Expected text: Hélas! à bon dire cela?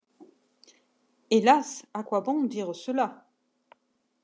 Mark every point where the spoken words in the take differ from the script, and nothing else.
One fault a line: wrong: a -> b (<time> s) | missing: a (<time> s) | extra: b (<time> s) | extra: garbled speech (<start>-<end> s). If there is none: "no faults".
extra: quoi (2.0 s)